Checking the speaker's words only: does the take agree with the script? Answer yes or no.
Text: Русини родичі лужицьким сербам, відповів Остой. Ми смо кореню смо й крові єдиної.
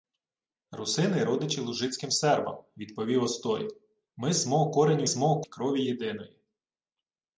yes